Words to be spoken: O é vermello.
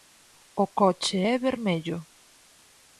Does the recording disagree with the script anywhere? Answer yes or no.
yes